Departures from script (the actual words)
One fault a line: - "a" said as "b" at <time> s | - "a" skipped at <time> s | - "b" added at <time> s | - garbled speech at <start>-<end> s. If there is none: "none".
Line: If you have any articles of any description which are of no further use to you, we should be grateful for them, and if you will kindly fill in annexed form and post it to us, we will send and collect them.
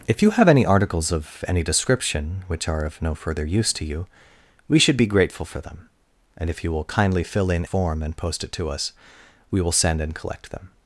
- "annexed" skipped at 7.7 s